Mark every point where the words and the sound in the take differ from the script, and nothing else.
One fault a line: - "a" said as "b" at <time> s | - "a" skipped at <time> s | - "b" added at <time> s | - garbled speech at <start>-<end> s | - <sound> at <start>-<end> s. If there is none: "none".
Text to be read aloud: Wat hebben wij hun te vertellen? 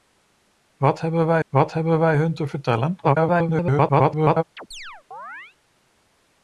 - "wat hebben wij" added at 1.5 s
- garbled speech at 3.0-4.4 s
- chirp at 4.6-5.6 s